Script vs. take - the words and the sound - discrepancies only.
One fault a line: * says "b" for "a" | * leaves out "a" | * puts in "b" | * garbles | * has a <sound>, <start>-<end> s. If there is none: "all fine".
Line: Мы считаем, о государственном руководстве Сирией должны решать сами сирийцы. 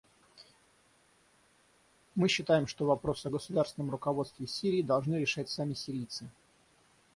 * puts in "что вопрос"